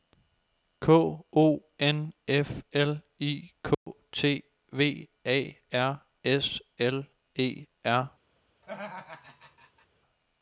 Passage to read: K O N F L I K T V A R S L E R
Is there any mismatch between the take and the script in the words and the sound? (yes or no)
yes